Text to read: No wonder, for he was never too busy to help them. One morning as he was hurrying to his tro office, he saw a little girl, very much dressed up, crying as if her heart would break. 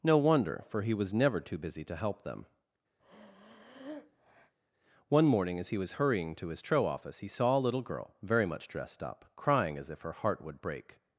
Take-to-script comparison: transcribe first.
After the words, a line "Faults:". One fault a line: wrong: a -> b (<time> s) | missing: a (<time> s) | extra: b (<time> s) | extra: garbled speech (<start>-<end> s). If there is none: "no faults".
No wonder, for he was never too busy to help them. One morning as he was hurrying to his tro office, he saw a little girl, very much dressed up, crying as if her heart would break.
Faults:
no faults